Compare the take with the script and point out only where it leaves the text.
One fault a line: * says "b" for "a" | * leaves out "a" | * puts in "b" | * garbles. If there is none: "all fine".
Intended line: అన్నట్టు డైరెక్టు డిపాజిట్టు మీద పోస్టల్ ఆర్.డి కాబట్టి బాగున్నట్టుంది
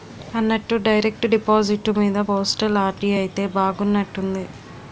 * says "అయితే" for "కాబట్టి"